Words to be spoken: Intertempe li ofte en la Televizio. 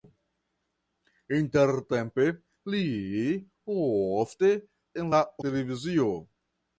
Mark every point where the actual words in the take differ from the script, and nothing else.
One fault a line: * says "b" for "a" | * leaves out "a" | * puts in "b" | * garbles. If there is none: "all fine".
all fine